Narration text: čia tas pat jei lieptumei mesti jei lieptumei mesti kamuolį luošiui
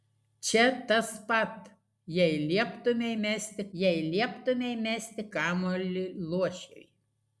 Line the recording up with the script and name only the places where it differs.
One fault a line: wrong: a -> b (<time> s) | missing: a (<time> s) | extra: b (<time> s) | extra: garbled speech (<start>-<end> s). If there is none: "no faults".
no faults